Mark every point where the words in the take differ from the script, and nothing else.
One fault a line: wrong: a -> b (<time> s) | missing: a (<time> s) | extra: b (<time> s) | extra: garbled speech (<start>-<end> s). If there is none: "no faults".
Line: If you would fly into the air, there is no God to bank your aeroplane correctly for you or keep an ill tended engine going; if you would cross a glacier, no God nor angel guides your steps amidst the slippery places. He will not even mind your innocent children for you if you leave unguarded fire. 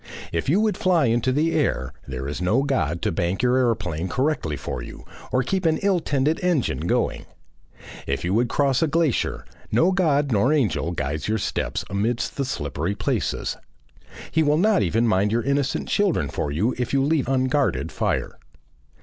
no faults